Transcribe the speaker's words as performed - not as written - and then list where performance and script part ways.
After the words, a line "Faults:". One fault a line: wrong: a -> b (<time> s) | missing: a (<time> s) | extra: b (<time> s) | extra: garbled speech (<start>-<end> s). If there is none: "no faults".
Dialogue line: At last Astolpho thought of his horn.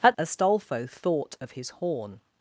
At Astolpho thought of his horn.
Faults:
missing: last (0.2 s)